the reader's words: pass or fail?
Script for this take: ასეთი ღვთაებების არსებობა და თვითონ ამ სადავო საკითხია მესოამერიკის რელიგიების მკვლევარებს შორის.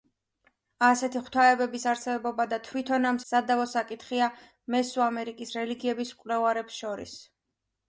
pass